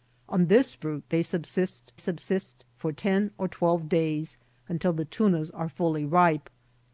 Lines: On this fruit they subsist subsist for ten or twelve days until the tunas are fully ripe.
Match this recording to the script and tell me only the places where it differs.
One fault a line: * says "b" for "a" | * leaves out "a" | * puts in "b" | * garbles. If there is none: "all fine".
all fine